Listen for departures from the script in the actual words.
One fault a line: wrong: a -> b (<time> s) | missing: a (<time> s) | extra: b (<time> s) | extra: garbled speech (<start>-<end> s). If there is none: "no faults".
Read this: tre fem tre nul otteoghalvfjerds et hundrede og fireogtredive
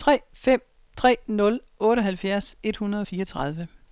no faults